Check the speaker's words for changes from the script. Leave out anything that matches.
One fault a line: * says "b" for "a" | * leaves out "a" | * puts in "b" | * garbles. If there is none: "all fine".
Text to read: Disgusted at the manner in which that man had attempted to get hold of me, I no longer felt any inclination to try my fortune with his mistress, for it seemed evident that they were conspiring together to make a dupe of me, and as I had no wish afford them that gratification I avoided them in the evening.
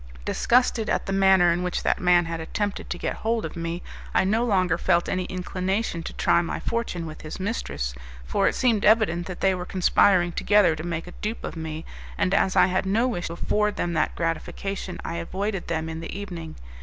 all fine